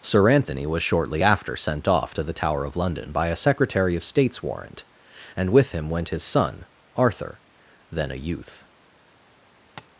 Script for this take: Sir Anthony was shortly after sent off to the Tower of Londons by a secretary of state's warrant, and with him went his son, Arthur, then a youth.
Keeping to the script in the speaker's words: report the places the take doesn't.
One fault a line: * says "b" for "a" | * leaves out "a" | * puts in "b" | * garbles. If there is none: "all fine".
* says "London" for "Londons"